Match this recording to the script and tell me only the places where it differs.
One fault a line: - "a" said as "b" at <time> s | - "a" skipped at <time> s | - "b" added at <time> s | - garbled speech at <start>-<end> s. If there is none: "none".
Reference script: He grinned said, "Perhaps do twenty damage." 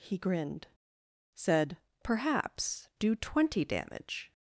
none